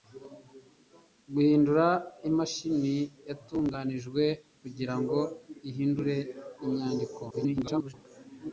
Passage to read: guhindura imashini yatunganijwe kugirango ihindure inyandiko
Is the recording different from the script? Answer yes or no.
yes